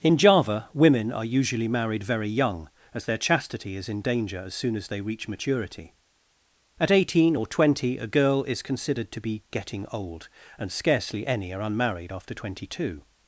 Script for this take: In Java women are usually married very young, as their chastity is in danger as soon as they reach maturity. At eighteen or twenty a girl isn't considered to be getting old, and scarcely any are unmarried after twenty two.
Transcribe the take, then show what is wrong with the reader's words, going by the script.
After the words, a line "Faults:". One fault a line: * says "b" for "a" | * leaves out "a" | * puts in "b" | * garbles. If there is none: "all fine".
In Java women are usually married very young, as their chastity is in danger as soon as they reach maturity. At eighteen or twenty a girl is considered to be getting old, and scarcely any are unmarried after twenty two.
Faults:
* says "is" for "isn't"